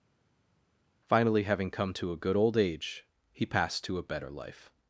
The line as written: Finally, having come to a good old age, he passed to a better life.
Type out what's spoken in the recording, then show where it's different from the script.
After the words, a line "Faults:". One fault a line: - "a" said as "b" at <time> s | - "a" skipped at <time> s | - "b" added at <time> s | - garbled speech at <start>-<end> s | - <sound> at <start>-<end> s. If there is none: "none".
Finally, having come to a good old age, he passed to a better life.
Faults:
none